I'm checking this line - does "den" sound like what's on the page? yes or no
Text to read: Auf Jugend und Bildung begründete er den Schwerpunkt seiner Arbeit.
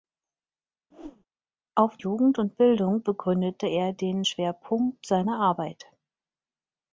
yes